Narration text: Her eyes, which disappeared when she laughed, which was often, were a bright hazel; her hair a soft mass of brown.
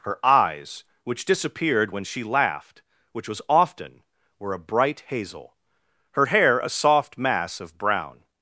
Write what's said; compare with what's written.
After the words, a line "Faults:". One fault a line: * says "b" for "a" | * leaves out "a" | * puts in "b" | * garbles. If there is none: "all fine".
Her eyes, which disappeared when she laughed, which was often, were a bright hazel; her hair a soft mass of brown.
Faults:
all fine